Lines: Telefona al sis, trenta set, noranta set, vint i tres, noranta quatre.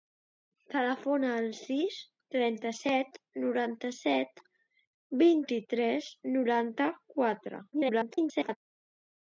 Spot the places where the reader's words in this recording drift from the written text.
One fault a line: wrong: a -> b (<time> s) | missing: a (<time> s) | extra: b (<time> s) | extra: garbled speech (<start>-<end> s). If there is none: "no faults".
extra: garbled speech (7.7-8.6 s)